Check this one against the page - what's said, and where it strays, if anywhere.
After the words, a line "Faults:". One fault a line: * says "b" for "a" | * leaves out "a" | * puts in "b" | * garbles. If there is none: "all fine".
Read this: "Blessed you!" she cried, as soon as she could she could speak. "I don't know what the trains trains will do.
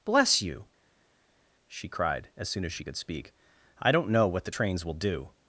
"Bless you!" she cried, as soon as she could speak. "I don't know what the trains will do.
Faults:
* says "Bless" for "Blessed"
* leaves out "she could"
* leaves out "trains"